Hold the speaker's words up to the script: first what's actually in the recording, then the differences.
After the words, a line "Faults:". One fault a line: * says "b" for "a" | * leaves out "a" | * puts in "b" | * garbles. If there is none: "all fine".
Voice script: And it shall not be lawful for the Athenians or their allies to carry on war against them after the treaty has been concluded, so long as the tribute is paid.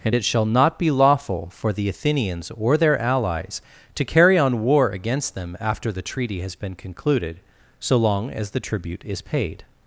And it shall not be lawful for the Athenians or their allies to carry on war against them after the treaty has been concluded, so long as the tribute is paid.
Faults:
all fine